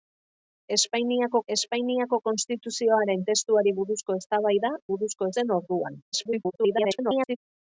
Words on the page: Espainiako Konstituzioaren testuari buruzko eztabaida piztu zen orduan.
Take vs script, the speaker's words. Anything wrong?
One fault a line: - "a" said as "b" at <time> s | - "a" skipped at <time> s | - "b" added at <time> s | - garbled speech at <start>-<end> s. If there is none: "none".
- "espainiako" added at 1.5 s
- "piztu" said as "buruzko" at 4.9 s
- garbled speech at 6.1-7.4 s